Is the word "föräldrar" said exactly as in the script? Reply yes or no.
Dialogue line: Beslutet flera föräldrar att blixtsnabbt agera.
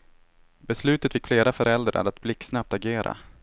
yes